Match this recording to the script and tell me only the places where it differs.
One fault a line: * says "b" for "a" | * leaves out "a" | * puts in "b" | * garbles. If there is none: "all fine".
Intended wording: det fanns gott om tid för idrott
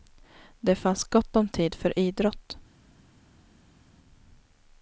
all fine